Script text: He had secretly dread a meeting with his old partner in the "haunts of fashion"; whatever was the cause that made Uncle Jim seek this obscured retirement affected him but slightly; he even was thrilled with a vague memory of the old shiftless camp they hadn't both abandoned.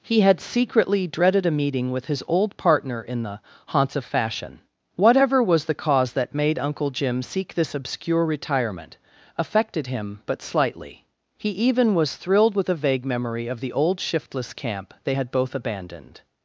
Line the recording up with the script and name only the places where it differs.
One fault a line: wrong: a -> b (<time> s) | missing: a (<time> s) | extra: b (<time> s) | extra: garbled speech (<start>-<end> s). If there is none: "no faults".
wrong: dread -> dreaded (1.1 s)
wrong: obscured -> obscure (7.8 s)
wrong: hadn't -> had (15.1 s)